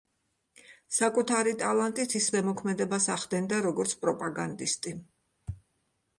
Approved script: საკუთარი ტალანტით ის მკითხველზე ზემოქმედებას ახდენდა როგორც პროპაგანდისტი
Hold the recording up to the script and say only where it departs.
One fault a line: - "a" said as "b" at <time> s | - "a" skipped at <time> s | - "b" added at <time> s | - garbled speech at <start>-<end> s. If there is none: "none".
- "მკითხველზე" skipped at 2.3 s